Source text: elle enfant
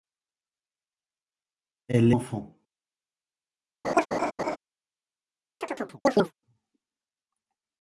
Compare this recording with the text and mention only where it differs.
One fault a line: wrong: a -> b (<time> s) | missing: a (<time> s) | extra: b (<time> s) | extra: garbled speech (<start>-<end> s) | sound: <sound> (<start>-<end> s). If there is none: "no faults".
sound: laugh (3.8-4.6 s)
sound: chirp (5.6-6.3 s)